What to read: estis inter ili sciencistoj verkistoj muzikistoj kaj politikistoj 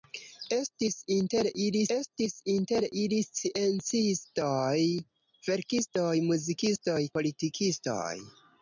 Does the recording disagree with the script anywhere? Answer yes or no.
yes